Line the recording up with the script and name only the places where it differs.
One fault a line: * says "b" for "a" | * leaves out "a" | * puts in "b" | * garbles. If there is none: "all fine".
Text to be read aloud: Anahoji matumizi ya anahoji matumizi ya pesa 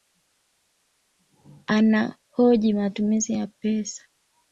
* leaves out "anahoji matumizi ya"